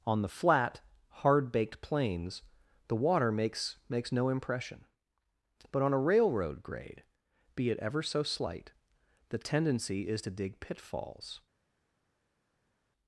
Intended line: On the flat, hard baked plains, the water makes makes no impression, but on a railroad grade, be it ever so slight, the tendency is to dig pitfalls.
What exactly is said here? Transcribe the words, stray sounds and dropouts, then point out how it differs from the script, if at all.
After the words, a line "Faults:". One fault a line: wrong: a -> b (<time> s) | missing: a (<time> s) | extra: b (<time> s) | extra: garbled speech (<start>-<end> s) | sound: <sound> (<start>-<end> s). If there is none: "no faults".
On the flat, hard baked plains, the water makes makes no impression, but on a railroad grade, be it ever so slight, the tendency is to dig pitfalls.
Faults:
no faults